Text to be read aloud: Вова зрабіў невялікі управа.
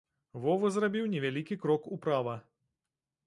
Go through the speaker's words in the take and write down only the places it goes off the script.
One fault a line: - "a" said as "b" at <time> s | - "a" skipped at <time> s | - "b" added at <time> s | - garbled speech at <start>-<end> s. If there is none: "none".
- "крок" added at 1.6 s